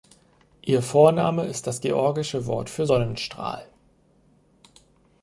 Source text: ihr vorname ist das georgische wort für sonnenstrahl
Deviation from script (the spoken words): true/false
false